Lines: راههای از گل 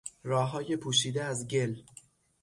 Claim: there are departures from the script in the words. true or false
true